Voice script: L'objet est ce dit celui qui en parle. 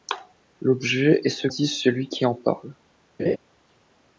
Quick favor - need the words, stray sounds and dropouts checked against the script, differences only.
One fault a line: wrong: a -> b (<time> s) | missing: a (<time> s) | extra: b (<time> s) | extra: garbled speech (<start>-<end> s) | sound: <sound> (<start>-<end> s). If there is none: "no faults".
sound: laugh (3.2-3.4 s)